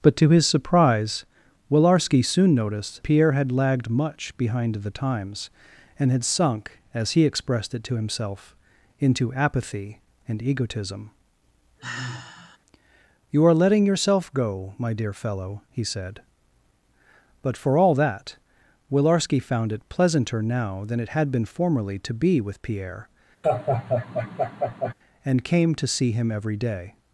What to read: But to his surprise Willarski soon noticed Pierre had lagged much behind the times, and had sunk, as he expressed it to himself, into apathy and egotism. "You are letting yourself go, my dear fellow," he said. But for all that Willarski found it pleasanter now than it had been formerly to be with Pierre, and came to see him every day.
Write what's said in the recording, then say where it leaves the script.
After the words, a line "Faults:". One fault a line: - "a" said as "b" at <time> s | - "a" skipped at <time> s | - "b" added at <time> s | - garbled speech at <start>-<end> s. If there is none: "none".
But to his surprise Willarski soon noticed Pierre had lagged much behind the times, and had sunk, as he expressed it to himself, into apathy and egotism. "You are letting yourself go, my dear fellow," he said. But for all that Willarski found it pleasanter now than it had been formerly to be with Pierre, and came to see him every day.
Faults:
none